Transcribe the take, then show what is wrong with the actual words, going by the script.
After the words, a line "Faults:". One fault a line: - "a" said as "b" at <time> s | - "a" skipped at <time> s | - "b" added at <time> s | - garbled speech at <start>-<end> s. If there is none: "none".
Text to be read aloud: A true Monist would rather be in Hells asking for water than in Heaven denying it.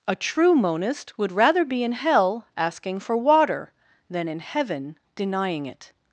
A true Monist would rather be in Hell asking for water than in Heaven denying it.
Faults:
- "Hells" said as "Hell" at 1.9 s